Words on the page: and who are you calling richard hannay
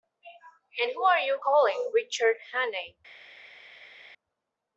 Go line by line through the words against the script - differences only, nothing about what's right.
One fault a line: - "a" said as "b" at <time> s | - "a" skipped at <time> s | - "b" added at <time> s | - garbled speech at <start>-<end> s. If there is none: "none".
none